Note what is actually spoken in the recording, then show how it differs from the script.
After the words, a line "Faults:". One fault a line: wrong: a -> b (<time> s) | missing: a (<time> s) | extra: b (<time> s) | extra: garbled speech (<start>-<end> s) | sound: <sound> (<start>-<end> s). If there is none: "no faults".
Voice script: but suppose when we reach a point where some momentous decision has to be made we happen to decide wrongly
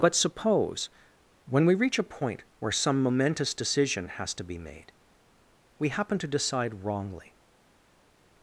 but suppose when we reach a point where some momentous decision has to be made we happen to decide wrongly
Faults:
no faults